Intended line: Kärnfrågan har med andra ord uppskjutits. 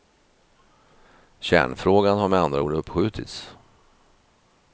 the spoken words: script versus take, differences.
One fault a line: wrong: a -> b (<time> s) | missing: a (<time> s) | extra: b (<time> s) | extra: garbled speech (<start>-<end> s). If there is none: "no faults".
no faults